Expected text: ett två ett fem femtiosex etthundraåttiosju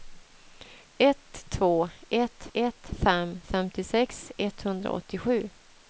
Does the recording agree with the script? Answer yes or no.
no